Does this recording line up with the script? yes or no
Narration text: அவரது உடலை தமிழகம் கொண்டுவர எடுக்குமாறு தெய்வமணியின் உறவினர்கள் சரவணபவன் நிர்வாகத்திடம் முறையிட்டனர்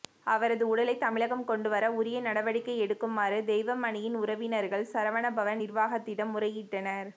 no